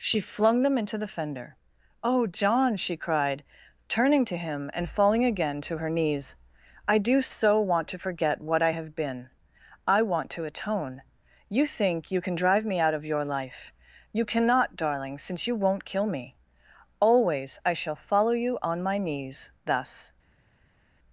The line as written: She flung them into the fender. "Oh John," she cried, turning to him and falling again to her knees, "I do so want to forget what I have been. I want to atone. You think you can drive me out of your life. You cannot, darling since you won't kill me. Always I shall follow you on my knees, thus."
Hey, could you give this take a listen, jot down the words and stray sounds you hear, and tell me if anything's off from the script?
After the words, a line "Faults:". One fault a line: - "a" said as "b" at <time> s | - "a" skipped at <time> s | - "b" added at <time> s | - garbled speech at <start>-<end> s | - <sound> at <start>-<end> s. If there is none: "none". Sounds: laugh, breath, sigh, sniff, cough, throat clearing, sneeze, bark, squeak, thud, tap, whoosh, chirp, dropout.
She flung them into the fender. "Oh John," she cried, turning to him and falling again to her knees, "I do so want to forget what I have been. I want to atone. You think you can drive me out of your life. You cannot, darling since you won't kill me. Always I shall follow you on my knees, thus."
Faults:
none